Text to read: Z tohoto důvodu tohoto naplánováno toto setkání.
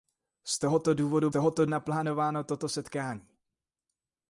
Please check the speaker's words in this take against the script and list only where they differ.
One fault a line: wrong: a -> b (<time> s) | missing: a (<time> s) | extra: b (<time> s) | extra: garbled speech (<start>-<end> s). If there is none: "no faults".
no faults